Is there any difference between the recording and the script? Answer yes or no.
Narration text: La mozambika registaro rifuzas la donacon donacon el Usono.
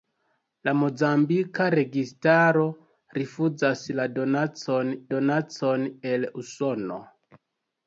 no